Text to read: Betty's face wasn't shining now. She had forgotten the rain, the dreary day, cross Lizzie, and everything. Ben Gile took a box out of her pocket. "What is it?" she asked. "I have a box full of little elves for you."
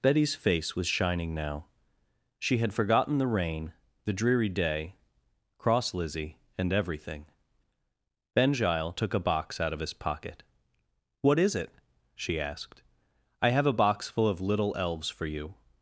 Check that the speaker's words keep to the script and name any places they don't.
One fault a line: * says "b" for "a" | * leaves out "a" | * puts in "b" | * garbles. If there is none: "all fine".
* says "was" for "wasn't"
* says "his" for "her"